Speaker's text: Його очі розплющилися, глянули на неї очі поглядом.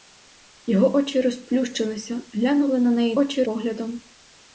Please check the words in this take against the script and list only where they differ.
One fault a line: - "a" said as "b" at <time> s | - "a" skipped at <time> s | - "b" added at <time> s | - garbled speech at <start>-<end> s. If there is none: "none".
none